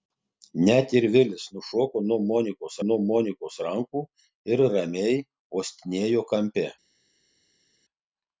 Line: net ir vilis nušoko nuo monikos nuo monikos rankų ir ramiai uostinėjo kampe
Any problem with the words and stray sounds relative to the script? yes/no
no